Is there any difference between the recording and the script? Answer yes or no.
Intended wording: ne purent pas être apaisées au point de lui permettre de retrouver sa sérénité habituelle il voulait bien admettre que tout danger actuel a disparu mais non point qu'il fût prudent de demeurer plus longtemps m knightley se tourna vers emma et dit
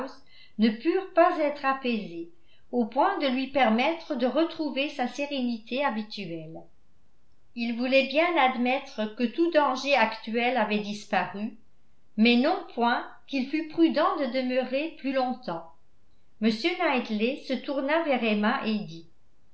yes